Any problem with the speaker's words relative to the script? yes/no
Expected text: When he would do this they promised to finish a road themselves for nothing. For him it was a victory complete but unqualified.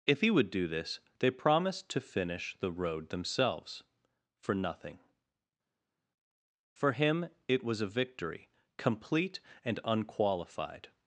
yes